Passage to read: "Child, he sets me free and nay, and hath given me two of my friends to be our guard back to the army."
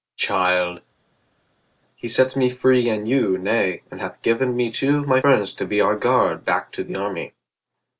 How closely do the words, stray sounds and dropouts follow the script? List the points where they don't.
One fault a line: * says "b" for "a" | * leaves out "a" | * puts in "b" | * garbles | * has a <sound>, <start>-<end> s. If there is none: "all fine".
* puts in "you"